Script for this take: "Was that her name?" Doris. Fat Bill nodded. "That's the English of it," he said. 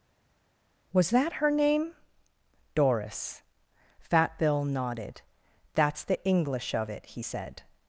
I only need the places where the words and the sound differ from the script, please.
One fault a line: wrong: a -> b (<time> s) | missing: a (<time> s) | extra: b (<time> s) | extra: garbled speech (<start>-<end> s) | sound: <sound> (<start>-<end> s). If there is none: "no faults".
no faults